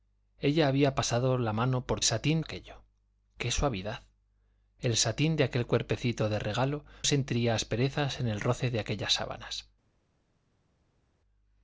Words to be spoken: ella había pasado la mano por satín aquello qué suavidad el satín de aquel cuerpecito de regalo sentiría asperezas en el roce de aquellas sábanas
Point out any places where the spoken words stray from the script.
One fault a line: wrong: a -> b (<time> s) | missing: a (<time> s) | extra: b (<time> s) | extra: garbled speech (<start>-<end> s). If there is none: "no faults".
no faults